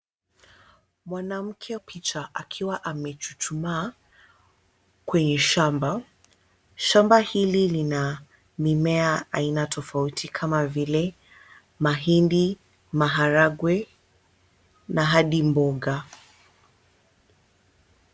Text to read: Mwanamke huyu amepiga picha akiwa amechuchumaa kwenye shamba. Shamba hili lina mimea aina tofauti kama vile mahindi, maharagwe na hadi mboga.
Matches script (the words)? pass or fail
fail